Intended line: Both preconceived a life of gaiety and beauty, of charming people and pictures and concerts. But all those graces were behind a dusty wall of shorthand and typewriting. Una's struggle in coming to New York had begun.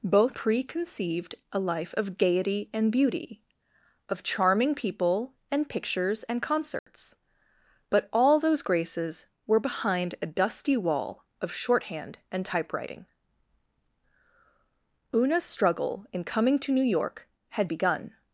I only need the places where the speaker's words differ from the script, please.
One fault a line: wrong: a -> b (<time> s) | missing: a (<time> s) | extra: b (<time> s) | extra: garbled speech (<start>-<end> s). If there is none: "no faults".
no faults